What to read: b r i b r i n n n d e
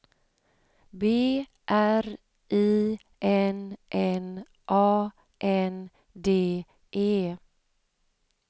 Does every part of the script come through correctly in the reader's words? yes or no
no